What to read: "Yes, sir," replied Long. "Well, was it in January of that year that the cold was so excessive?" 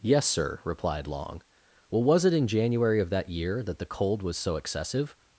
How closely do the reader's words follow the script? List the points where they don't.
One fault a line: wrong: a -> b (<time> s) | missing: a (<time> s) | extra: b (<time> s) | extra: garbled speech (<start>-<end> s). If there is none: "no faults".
no faults